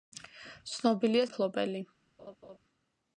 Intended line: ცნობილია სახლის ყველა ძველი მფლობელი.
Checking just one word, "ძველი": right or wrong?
wrong